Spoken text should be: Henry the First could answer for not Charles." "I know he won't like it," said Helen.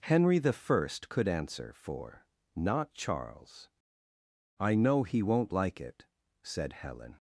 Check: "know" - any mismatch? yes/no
no